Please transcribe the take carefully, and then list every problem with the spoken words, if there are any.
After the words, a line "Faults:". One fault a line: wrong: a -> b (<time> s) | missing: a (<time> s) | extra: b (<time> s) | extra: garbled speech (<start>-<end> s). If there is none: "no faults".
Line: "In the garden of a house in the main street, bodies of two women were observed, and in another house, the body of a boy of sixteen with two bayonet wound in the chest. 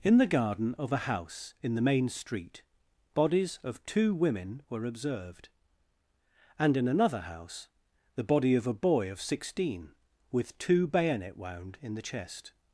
"In the garden of a house in the main street, bodies of two women were observed, and in another house, the body of a boy of sixteen with two bayonet wound in the chest.
Faults:
no faults